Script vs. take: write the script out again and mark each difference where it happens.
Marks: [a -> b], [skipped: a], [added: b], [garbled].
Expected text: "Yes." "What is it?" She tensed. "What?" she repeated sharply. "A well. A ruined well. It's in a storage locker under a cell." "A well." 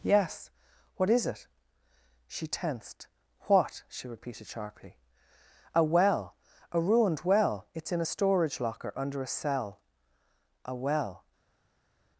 "Yes." "What is it?" She tensed. "What?" she repeated sharply. "A well. A ruined well. It's in a storage locker under a cell." "A well."